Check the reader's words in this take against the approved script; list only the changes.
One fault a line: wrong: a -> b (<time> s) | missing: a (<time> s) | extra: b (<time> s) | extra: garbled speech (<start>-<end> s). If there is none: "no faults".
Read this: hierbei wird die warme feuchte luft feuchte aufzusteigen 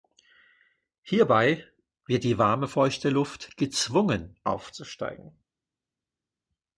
wrong: feuchte -> gezwungen (3.6 s)